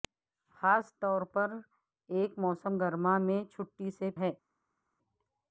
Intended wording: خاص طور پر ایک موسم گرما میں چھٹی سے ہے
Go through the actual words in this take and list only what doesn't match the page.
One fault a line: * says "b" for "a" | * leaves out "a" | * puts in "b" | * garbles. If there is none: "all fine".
all fine